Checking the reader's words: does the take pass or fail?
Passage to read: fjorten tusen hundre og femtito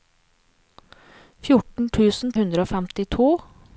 pass